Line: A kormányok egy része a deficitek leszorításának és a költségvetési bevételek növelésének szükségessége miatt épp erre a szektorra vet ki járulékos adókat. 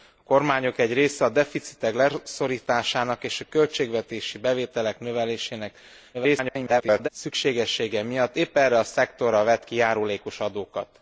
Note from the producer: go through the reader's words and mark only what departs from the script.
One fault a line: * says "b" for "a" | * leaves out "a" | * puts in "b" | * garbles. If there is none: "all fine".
* garbles